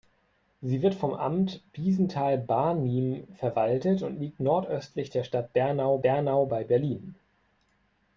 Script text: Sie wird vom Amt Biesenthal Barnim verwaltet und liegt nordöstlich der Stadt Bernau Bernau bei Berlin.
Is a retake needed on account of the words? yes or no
no